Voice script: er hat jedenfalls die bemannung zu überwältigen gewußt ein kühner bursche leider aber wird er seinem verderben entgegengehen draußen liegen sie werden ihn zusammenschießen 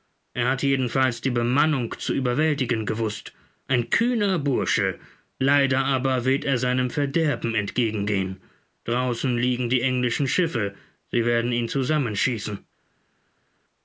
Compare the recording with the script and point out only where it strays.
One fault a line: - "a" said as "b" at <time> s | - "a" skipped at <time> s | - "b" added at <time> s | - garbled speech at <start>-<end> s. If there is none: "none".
- "die englischen schiffe" added at 9.7 s